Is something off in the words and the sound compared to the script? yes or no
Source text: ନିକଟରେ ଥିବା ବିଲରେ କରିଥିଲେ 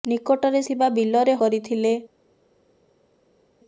no